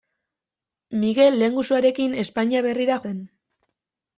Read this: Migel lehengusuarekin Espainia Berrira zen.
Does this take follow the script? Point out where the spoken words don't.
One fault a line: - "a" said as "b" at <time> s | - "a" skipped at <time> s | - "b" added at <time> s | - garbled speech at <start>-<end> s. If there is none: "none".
none